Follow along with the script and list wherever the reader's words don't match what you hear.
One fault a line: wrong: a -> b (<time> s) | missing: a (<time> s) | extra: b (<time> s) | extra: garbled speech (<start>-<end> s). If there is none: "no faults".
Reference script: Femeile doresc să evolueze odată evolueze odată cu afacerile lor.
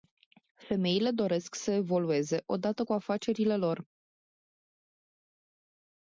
missing: evolueze odată (2.9 s)